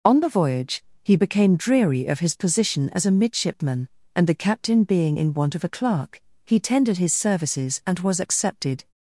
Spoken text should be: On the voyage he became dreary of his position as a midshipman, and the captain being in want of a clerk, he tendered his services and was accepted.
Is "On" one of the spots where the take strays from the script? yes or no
no